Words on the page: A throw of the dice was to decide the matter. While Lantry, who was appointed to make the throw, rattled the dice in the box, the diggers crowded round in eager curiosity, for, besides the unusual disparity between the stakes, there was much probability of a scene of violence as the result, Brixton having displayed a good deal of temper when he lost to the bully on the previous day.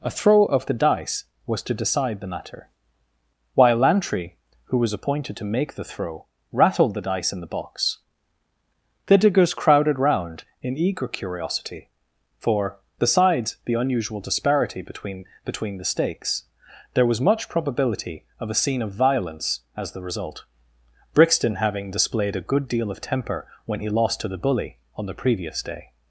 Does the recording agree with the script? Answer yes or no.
no